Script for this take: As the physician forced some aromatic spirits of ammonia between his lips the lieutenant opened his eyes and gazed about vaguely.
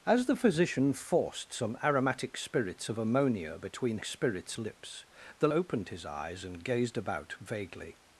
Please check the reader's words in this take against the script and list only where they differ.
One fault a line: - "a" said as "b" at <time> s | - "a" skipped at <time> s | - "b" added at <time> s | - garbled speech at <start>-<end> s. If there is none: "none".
- "his" said as "spirits" at 4.0 s
- "lieutenant" skipped at 5.5 s